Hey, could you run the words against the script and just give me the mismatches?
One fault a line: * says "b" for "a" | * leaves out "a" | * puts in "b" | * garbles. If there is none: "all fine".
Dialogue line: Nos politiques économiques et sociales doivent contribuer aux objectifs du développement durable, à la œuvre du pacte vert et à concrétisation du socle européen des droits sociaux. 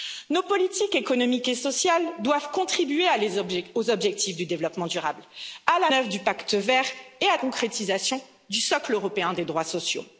all fine